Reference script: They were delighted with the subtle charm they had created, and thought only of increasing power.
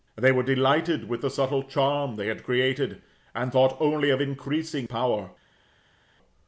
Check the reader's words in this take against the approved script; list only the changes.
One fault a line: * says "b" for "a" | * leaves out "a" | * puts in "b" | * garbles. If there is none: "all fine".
all fine